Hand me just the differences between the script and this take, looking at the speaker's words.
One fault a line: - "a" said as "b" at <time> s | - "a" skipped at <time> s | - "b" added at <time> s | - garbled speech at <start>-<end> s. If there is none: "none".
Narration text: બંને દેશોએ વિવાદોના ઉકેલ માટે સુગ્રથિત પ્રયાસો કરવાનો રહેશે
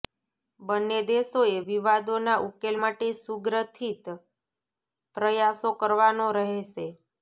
none